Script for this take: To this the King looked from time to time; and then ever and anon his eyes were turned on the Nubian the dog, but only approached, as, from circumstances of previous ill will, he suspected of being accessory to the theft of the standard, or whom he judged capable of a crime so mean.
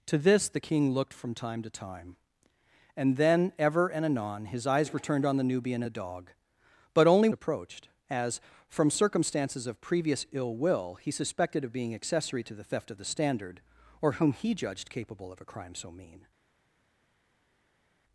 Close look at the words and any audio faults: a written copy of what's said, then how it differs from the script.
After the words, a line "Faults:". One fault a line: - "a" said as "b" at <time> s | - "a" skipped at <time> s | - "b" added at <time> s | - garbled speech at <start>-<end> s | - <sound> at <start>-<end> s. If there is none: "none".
To this the King looked from time to time; and then ever and anon his eyes were turned on the Nubian the dog, but only approached, as, from circumstances of previous ill will, he suspected of being accessory to the theft of the standard, or whom he judged capable of a crime so mean.
Faults:
none